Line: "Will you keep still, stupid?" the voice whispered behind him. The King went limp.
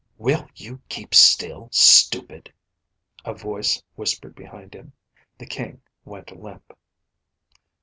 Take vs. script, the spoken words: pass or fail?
fail